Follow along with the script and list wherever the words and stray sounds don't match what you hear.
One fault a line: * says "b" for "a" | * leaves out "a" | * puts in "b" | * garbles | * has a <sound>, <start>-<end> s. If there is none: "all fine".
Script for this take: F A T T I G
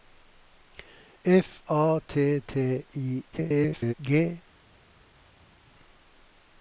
* garbles